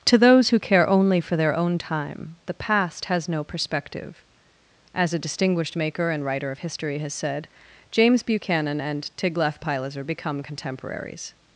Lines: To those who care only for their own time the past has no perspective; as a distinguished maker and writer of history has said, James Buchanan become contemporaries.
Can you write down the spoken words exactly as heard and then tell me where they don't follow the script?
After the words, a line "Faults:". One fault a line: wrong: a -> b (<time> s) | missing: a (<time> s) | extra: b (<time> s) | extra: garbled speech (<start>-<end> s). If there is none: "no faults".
To those who care only for their own time the past has no perspective; as a distinguished maker and writer of history has said, James Buchanan and Tiglath Pileser become contemporaries.
Faults:
extra: and Tiglath Pileser (8.8 s)